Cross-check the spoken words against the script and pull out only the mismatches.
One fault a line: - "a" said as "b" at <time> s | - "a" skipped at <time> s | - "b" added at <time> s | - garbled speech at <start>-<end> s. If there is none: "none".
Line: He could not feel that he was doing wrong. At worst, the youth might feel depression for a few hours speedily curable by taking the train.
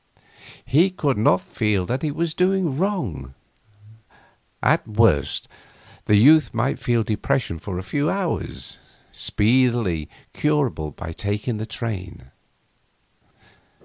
none